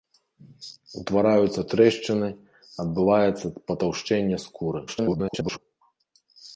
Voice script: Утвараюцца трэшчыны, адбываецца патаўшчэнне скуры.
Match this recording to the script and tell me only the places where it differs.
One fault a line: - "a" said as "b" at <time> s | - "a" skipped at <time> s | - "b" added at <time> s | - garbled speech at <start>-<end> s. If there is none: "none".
- garbled speech at 4.9-5.6 s